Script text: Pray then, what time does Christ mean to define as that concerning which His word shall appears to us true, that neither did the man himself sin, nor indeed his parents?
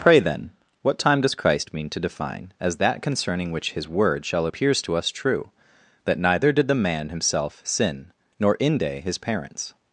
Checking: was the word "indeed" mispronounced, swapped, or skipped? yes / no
yes